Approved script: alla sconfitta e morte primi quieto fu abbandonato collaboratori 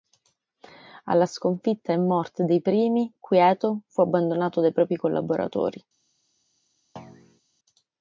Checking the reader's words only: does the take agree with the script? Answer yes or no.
no